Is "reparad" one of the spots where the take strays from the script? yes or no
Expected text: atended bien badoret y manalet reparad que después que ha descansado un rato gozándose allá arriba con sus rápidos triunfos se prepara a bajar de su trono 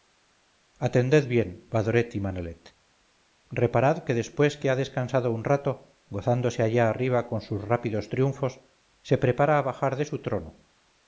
no